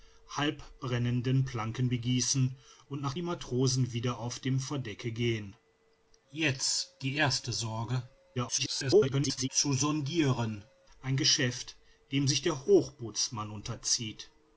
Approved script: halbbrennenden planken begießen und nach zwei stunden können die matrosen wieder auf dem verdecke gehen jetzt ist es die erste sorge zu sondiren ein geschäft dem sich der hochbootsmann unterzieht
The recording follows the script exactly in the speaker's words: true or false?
false